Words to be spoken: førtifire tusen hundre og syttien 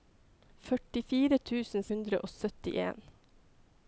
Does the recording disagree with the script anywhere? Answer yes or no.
no